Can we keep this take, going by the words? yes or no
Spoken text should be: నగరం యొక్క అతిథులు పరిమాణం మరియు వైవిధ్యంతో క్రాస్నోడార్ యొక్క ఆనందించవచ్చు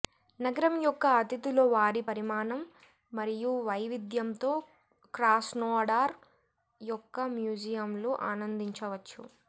no